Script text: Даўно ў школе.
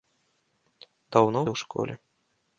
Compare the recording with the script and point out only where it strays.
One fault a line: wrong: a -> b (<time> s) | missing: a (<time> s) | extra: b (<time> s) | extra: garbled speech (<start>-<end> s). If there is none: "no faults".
no faults